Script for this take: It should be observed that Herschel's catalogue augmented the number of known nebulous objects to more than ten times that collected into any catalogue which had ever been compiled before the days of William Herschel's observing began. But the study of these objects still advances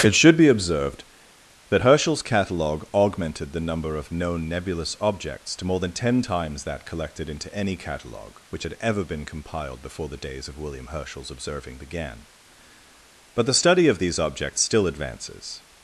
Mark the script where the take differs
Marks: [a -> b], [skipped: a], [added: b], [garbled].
It should be observed that Herschel's catalogue augmented the number of known nebulous objects to more than ten times that collected into any catalogue which had ever been compiled before the days of William Herschel's observing began. But the study of these objects still advances